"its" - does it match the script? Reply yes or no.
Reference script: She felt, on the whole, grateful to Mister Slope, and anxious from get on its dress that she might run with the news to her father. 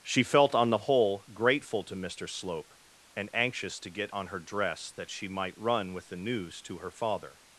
no